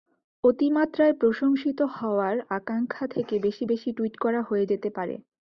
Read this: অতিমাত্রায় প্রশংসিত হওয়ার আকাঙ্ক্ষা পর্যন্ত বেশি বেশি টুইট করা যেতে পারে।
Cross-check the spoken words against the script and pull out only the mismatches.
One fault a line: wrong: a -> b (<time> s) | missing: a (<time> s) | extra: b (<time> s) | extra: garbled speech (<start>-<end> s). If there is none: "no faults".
wrong: পর্যন্ত -> থেকে (3.1 s)
extra: হয়ে (4.4 s)